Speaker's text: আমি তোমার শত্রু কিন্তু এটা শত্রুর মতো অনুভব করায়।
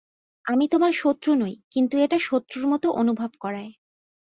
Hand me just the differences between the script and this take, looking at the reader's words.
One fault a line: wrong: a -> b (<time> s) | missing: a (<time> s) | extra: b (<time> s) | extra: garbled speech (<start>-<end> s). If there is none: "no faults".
extra: নই (1.4 s)